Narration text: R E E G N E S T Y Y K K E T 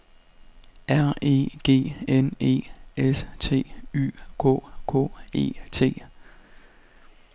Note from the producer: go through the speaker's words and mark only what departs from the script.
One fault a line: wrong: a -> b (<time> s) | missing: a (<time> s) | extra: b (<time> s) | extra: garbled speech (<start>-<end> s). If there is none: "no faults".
missing: E (1.5 s)
missing: Y (4.1 s)